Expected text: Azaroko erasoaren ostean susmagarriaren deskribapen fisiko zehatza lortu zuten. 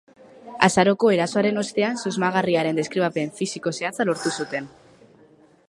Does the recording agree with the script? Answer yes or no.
yes